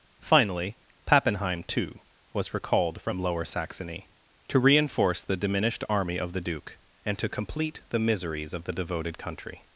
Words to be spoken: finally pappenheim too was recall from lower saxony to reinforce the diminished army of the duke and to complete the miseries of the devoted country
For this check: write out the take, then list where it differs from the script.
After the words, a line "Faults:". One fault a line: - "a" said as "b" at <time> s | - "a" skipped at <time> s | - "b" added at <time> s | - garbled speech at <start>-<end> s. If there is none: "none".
finally pappenheim too was recalled from lower saxony to reinforce the diminished army of the duke and to complete the miseries of the devoted country
Faults:
- "recall" said as "recalled" at 2.5 s